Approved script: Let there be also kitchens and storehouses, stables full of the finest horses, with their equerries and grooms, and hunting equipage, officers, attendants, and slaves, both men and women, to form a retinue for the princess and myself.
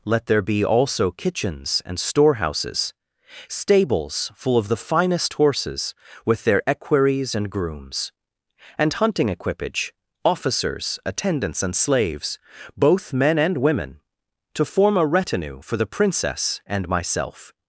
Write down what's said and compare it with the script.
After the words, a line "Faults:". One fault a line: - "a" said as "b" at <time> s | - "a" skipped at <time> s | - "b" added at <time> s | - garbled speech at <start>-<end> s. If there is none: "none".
Let there be also kitchens and storehouses, stables full of the finest horses, with their equerries and grooms, and hunting equipage, officers, attendants, and slaves, both men and women, to form a retinue for the princess and myself.
Faults:
none